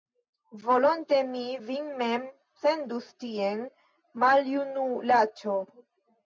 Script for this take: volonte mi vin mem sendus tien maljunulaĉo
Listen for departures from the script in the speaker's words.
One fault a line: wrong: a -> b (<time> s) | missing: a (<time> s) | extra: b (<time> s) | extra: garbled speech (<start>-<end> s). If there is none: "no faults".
no faults